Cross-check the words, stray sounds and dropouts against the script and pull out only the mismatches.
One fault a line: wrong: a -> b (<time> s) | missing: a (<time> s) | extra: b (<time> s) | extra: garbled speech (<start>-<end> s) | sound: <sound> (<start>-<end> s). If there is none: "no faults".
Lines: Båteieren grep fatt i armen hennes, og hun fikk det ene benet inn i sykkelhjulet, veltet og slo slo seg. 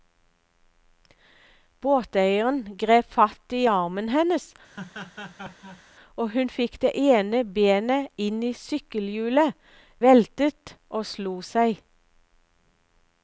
sound: laugh (4.7-5.8 s)
missing: slo (11.4 s)